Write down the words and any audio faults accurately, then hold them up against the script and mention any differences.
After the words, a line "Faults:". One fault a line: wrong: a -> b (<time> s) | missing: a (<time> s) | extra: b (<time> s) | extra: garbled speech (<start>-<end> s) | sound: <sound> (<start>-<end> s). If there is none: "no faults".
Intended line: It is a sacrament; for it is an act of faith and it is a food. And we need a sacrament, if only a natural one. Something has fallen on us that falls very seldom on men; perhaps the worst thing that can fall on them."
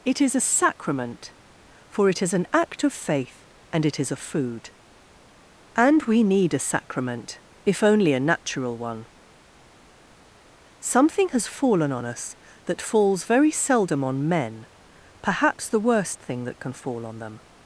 It is a sacrament; for it is an act of faith and it is a food. And we need a sacrament, if only a natural one. Something has fallen on us that falls very seldom on men; perhaps the worst thing that can fall on them."
Faults:
no faults